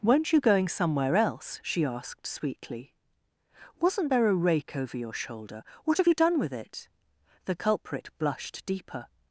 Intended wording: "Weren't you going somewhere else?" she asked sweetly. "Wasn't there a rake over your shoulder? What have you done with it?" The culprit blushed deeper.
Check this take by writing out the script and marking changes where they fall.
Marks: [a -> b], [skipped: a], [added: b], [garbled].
"Weren't you going somewhere else?" she asked sweetly. "Wasn't there a rake over your shoulder? What have you done with it?" The culprit blushed deeper.